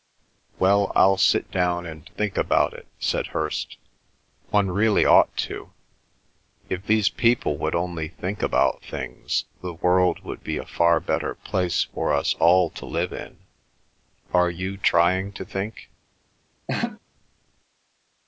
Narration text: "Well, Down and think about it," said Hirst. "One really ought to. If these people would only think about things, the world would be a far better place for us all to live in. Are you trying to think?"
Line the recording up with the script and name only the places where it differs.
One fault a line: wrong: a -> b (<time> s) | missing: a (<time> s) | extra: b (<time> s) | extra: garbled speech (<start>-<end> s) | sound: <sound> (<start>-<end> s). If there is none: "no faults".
extra: I'll sit (0.9 s)
sound: laugh (16.7-17.0 s)